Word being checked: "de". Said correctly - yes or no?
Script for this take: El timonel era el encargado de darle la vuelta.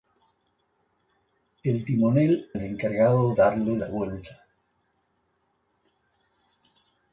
no